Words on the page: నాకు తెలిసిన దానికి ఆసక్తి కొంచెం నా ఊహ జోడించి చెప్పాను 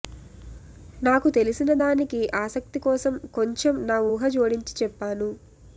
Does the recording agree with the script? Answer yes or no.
no